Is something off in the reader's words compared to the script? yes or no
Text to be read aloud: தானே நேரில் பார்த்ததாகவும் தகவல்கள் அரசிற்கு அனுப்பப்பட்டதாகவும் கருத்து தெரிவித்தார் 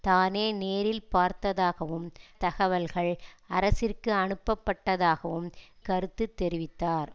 no